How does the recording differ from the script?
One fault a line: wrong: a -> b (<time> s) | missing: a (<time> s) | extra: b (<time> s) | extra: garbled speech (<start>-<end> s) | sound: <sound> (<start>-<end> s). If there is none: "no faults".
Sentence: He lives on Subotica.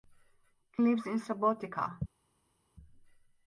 wrong: on -> in (1.1 s)